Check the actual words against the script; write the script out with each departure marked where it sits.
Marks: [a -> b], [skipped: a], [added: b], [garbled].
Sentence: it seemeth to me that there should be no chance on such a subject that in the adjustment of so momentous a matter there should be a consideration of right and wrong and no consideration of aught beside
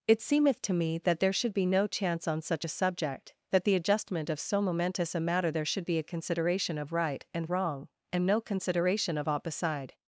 it seemeth to me that there should be no chance on such a subject that [skipped: in] the adjustment of so momentous a matter there should be a consideration of right and wrong and no consideration of aught beside